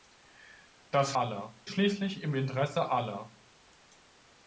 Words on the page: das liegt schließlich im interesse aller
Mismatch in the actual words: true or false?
true